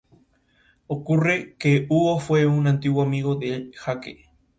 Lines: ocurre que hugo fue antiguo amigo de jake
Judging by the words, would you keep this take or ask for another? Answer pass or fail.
fail